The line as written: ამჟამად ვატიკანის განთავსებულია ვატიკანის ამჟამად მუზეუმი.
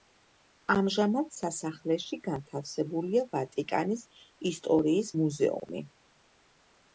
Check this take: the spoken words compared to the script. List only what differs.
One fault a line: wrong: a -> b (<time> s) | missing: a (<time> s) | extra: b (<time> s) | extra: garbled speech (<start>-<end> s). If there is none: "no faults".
wrong: ვატიკანის -> სასახლეში (1.4 s)
wrong: ამჟამად -> ისტორიის (4.5 s)